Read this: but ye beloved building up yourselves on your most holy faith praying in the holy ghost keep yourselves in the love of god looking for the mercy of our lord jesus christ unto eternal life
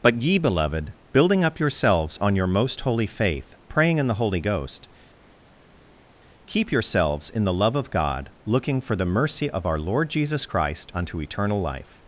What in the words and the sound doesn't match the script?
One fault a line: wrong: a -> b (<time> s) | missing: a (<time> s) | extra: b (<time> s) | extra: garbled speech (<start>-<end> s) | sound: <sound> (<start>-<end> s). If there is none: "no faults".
no faults